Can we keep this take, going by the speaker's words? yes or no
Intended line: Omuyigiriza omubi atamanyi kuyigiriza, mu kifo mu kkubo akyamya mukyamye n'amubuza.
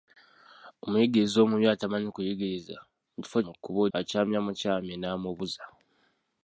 yes